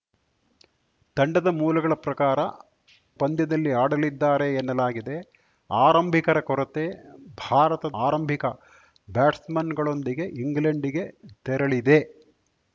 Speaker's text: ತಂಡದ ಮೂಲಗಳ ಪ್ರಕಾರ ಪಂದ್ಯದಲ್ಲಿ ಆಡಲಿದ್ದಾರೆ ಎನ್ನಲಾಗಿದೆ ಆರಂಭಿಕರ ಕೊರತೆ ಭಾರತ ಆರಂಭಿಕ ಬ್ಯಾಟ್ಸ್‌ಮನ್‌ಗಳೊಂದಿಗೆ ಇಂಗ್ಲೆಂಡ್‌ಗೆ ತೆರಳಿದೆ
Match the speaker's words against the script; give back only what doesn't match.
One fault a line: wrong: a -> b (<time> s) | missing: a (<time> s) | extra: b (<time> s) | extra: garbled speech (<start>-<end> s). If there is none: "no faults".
no faults